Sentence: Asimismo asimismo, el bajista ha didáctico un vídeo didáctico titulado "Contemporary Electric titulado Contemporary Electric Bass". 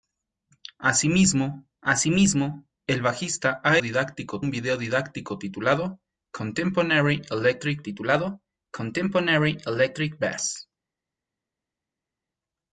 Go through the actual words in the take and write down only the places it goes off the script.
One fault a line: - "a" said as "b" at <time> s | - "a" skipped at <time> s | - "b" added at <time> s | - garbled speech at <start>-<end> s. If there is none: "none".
none